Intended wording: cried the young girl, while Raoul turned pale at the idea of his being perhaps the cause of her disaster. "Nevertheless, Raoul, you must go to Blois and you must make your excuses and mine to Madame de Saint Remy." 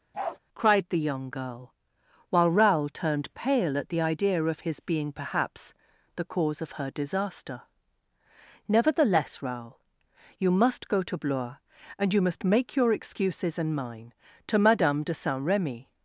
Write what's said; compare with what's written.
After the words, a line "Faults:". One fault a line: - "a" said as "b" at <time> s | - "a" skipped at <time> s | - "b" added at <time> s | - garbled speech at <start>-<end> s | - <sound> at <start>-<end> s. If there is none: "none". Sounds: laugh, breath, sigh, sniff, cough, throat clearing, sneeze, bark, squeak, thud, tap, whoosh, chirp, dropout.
cried the young girl, while Raoul turned pale at the idea of his being perhaps the cause of her disaster. "Nevertheless, Raoul, you must go to Blois and you must make your excuses and mine to Madame de Saint Remy."
Faults:
- bark at 0.1-0.4 s